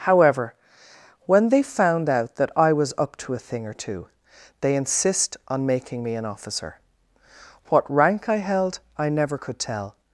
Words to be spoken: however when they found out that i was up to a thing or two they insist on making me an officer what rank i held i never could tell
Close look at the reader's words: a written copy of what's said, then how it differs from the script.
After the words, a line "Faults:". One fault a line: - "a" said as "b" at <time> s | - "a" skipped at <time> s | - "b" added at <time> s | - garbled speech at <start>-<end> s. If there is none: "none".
however when they found out that i was up to a thing or two they insist on making me an officer what rank i held i never could tell
Faults:
none